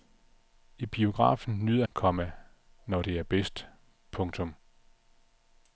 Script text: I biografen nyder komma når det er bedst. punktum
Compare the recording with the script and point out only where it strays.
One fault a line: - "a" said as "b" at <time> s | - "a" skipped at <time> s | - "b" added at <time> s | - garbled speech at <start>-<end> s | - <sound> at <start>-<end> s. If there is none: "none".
none